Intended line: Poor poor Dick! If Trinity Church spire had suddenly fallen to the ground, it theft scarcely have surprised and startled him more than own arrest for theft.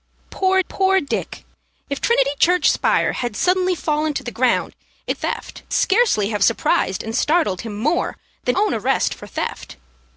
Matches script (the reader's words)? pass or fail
pass